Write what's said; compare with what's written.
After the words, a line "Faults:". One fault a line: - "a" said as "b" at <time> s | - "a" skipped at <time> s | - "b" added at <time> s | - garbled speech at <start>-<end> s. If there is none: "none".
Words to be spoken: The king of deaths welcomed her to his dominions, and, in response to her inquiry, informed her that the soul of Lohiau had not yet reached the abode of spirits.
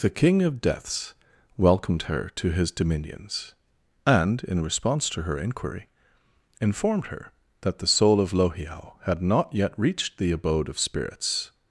The king of deaths welcomed her to his dominions, and, in response to her inquiry, informed her that the soul of Lohiau had not yet reached the abode of spirits.
Faults:
none